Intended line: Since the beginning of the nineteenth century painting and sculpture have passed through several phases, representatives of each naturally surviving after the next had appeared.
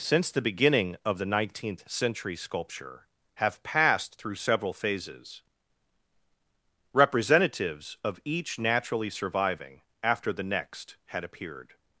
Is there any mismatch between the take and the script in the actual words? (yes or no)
yes